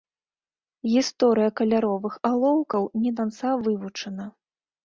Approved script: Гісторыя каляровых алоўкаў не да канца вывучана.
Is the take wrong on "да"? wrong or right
wrong